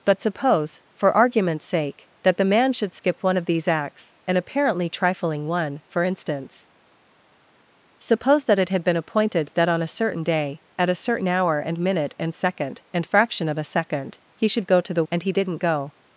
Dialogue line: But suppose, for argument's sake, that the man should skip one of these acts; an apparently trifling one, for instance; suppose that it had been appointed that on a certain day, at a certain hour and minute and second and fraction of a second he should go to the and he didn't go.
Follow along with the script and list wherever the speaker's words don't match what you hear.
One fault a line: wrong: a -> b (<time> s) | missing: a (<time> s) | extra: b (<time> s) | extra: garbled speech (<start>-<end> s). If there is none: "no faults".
no faults